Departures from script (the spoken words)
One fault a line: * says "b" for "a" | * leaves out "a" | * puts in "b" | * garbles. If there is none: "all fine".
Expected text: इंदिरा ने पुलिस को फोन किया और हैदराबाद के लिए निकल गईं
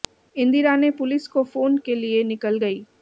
* leaves out "किया और हैदराबाद"